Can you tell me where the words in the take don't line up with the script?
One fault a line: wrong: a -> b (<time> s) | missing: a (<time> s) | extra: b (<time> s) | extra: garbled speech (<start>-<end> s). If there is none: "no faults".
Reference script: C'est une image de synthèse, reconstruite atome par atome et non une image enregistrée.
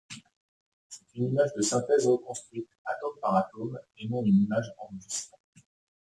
no faults